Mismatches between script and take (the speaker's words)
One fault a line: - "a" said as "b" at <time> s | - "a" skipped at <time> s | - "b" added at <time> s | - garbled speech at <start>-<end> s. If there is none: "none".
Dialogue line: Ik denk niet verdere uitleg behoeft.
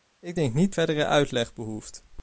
none